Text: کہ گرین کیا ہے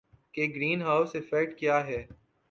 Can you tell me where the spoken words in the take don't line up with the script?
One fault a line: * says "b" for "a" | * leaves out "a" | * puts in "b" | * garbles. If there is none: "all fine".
* puts in "ہاؤس ایفیکٹ"